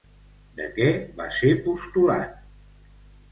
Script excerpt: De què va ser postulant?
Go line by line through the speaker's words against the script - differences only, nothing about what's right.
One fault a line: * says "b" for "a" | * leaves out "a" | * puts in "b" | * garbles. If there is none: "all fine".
all fine